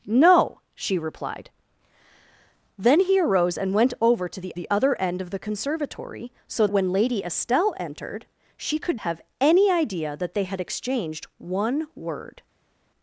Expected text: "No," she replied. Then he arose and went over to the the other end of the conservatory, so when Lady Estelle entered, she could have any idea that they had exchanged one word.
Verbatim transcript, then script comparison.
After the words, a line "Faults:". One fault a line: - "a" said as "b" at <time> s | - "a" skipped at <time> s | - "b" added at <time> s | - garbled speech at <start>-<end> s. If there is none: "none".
"No," she replied. Then he arose and went over to the the other end of the conservatory, so when Lady Estelle entered, she could have any idea that they had exchanged one word.
Faults:
none